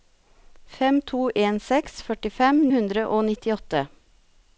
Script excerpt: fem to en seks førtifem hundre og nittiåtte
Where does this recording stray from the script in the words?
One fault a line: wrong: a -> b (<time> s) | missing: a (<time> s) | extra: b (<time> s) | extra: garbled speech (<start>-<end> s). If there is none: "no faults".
no faults